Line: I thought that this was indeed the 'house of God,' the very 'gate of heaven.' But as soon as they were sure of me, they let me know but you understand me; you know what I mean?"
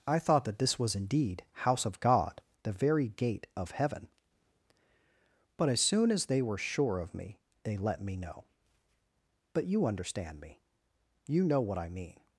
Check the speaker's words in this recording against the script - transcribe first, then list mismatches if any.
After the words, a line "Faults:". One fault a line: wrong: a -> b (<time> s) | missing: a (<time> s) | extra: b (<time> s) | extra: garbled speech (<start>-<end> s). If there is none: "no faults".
I thought that this was indeed 'house of God,' the very 'gate of heaven.' But as soon as they were sure of me, they let me know but you understand me; you know what I mean?"
Faults:
missing: the (1.4 s)